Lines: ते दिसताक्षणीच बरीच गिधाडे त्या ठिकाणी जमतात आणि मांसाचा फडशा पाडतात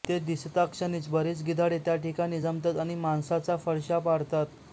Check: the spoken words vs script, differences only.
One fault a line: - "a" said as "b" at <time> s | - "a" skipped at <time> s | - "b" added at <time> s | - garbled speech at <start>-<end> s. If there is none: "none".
none